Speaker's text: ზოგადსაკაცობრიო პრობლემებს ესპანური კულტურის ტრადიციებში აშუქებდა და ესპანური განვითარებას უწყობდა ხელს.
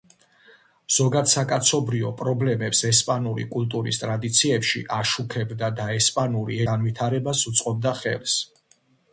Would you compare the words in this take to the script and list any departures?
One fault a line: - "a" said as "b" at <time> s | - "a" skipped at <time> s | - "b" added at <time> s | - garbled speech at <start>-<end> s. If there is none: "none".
none